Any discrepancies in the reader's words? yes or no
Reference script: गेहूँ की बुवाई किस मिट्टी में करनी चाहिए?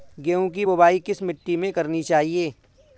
no